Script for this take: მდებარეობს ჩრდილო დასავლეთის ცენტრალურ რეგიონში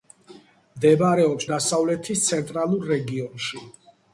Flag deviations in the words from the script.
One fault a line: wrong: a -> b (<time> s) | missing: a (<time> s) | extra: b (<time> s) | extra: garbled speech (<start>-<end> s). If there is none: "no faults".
missing: ჩრდილო (1.4 s)